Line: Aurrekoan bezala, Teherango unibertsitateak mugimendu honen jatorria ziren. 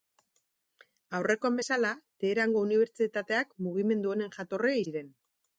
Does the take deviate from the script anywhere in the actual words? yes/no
no